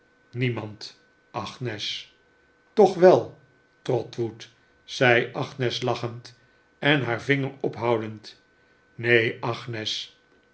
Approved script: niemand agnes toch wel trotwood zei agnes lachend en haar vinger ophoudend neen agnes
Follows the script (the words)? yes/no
yes